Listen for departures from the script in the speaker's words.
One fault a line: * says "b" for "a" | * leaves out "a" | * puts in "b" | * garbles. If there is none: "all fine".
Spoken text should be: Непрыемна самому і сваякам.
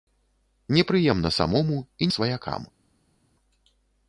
all fine